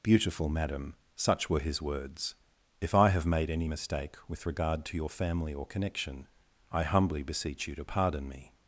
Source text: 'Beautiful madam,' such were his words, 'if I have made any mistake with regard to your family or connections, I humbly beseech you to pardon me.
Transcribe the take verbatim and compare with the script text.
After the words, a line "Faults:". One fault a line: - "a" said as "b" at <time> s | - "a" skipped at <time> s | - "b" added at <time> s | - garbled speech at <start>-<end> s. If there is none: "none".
'Beautiful madam,' such were his words, 'if I have made any mistake with regard to your family or connection, I humbly beseech you to pardon me.
Faults:
- "connections" said as "connection" at 5.7 s